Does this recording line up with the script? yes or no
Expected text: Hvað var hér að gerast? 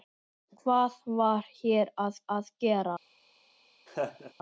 no